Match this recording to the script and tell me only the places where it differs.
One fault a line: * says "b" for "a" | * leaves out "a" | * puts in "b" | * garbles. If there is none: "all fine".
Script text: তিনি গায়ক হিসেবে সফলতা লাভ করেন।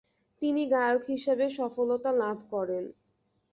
all fine